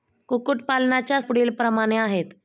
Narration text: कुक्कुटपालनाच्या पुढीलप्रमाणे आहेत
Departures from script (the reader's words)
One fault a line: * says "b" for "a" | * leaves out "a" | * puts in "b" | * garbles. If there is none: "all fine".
all fine